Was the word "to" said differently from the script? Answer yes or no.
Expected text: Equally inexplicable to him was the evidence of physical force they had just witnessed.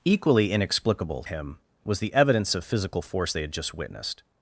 yes